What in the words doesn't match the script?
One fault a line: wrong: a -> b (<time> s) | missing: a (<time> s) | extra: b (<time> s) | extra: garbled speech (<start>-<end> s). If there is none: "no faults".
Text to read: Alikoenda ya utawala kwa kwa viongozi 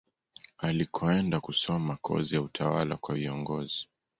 extra: kusoma kozi (1.4 s)
missing: kwa (3.1 s)